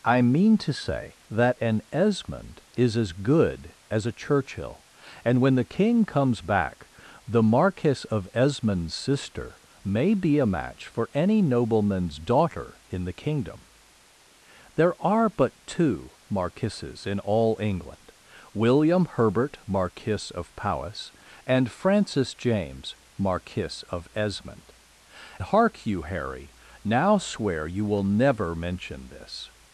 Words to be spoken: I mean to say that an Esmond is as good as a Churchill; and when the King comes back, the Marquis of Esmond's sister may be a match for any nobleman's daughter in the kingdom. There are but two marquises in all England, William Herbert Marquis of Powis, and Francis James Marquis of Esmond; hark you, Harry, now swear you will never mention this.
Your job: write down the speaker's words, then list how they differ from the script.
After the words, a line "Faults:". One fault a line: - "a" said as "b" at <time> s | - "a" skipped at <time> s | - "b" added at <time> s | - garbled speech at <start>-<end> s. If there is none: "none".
I mean to say that an Esmond is as good as a Churchill; and when the King comes back, the Marquis of Esmond's sister may be a match for any nobleman's daughter in the kingdom. There are but two marquises in all England, William Herbert Marquis of Powis, and Francis James Marquis of Esmond; hark you, Harry, now swear you will never mention this.
Faults:
none